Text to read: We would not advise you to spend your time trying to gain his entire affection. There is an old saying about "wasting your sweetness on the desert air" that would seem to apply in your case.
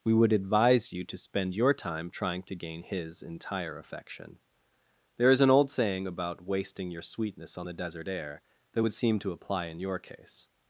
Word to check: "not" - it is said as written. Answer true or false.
false